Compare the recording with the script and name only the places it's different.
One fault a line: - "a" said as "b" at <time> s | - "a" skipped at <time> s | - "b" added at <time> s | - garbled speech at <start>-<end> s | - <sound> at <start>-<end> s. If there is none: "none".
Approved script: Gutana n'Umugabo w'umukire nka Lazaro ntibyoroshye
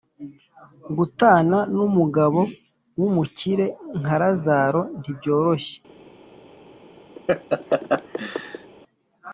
- laugh at 7.2-8.7 s